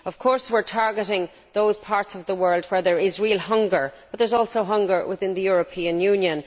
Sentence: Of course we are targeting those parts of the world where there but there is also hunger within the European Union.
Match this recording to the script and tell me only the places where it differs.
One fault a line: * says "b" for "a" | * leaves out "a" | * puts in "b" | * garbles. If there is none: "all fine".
* puts in "is real hunger"